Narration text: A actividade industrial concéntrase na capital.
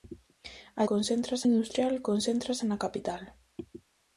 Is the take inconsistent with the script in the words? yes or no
yes